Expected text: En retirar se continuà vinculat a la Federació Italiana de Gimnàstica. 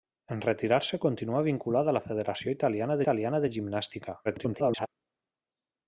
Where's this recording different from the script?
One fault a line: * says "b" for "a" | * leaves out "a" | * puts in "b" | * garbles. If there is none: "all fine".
* puts in "Italiana"
* garbles